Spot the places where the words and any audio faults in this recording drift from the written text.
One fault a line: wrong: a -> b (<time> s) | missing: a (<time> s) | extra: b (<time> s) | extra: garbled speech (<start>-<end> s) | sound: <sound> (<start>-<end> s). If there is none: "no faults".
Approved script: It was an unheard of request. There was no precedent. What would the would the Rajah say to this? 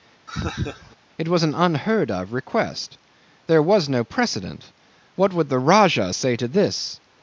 sound: laugh (0.3-1.0 s)
missing: would the (5.6 s)